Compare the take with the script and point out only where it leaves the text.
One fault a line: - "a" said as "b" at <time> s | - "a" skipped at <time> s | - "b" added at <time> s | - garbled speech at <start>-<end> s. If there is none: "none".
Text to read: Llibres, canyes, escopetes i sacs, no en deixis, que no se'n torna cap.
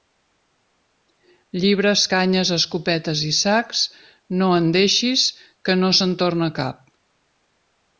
none